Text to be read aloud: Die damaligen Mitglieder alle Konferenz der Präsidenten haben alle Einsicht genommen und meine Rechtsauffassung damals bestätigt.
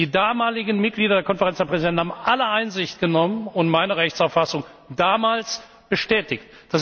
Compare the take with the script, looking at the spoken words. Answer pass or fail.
fail